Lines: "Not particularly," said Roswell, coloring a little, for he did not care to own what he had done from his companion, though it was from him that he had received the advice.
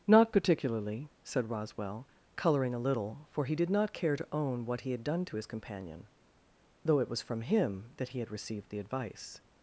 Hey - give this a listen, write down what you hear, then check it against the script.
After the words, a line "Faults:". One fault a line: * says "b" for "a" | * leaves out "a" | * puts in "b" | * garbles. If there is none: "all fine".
"Not particularly," said Roswell, coloring a little, for he did not care to own what he had done to his companion, though it was from him that he had received the advice.
Faults:
* says "to" for "from"